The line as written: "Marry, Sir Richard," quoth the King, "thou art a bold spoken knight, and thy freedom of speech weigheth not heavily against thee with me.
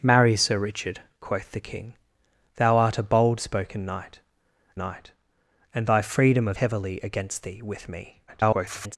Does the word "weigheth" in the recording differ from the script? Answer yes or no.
yes